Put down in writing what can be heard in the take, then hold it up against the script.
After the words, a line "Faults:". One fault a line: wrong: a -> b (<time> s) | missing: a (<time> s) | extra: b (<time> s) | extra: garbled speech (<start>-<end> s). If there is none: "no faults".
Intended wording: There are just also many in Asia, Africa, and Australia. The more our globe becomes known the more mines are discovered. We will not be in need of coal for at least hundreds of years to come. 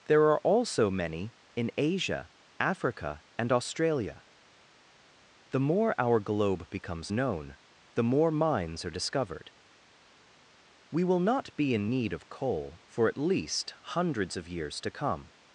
There are also many in Asia, Africa, and Australia. The more our globe becomes known the more mines are discovered. We will not be in need of coal for at least hundreds of years to come.
Faults:
missing: just (0.4 s)